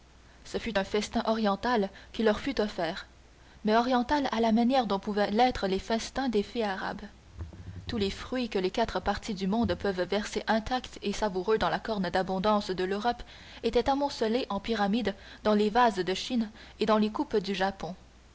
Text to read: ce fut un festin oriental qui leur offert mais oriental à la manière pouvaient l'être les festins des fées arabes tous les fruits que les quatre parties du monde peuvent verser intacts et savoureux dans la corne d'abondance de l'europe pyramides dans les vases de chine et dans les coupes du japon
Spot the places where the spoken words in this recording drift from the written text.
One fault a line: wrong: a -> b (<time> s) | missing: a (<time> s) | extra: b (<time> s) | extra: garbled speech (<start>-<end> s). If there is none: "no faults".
extra: fut (2.4 s)
extra: dont (4.9 s)
extra: étaient amoncelés en (13.6 s)